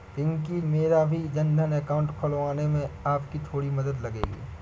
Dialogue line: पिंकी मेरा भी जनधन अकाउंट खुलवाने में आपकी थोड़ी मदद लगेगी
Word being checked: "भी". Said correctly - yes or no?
yes